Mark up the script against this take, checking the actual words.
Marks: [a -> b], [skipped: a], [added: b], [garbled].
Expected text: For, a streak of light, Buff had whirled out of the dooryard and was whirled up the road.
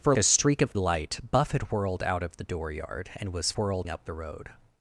For, a streak of light, Buff had whirled out of the dooryard and was whirled up the road.